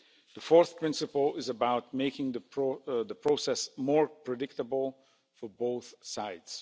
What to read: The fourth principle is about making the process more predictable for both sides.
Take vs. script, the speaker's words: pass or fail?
pass